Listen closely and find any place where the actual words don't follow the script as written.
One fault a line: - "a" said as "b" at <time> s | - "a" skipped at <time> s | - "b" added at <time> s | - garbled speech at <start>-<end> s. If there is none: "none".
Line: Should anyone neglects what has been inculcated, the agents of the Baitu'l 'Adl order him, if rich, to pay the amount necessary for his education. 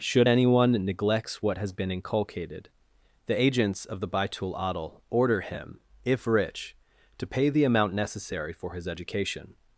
none